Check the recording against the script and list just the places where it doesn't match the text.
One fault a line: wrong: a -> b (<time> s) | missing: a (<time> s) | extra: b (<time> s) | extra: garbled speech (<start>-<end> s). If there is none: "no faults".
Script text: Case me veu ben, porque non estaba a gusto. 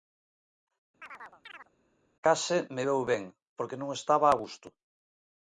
no faults